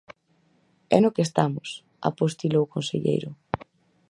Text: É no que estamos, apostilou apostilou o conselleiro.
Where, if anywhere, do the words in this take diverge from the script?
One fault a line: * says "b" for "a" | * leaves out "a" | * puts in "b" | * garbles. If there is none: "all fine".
* leaves out "apostilou"